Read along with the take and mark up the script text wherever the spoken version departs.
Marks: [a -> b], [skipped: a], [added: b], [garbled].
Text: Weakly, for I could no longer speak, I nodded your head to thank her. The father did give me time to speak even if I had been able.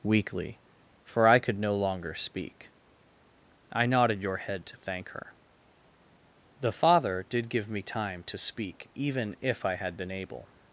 Weakly, for I could no longer speak, I nodded your head to thank her. The father did give me time to speak even if I had been able.